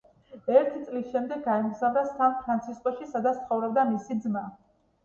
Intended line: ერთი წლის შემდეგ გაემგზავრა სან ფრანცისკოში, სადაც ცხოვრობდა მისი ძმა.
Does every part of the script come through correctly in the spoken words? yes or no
yes